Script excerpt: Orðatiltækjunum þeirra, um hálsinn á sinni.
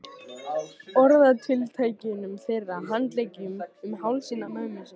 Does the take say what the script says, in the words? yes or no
no